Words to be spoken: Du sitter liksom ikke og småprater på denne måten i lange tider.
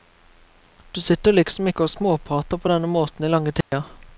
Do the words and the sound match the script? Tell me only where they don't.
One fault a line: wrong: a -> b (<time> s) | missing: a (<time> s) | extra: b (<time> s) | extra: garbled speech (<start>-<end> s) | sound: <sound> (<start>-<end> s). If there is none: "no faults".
sound: dropout (3.6-3.7 s)